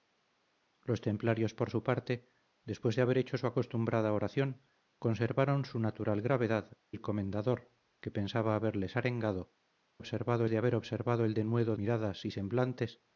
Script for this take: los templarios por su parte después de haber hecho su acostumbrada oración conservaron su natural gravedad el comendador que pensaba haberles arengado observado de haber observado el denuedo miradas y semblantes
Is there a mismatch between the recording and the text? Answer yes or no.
no